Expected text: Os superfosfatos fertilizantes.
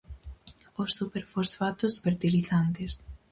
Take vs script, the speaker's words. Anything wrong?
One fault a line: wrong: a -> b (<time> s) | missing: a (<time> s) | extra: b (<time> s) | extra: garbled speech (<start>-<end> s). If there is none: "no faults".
no faults